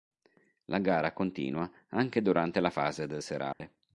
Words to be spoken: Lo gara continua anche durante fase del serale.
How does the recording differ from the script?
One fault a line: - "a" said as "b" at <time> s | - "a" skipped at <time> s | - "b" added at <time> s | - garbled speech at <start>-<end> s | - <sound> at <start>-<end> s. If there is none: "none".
- "Lo" said as "La" at 0.7 s
- "la" added at 2.6 s
- dropout at 3.5-3.6 s